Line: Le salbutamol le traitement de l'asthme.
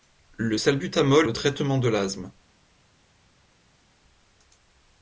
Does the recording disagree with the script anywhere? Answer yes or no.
no